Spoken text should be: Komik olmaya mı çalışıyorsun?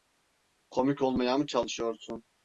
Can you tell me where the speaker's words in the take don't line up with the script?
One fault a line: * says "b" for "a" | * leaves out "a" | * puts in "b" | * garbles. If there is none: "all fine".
all fine